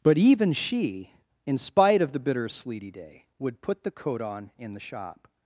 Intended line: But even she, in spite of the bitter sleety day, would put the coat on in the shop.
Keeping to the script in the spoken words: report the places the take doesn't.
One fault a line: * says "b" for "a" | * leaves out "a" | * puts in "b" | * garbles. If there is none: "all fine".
all fine